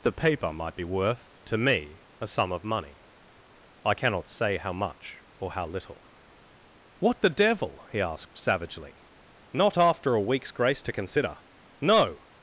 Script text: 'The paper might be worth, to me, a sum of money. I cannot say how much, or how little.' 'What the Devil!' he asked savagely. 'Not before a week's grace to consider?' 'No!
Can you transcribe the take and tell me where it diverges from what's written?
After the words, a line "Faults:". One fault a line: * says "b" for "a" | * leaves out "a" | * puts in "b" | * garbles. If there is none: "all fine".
'The paper might be worth, to me, a sum of money. I cannot say how much, or how little.' 'What the Devil!' he asked savagely. 'Not after a week's grace to consider?' 'No!
Faults:
* says "after" for "before"